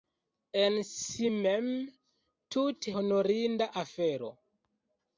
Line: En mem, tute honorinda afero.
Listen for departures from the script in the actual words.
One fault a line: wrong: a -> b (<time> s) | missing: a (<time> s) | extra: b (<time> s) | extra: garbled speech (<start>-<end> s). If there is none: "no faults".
extra: si (0.9 s)